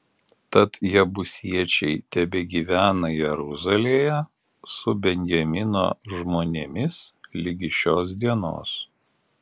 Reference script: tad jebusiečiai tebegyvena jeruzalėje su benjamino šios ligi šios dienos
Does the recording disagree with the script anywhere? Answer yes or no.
yes